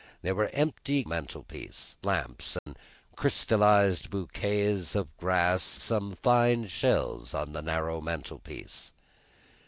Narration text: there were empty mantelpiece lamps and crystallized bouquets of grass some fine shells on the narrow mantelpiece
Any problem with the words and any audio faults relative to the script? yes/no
yes